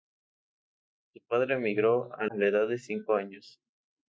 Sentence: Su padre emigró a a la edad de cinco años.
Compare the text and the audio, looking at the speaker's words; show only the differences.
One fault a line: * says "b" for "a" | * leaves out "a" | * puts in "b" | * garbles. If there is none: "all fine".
all fine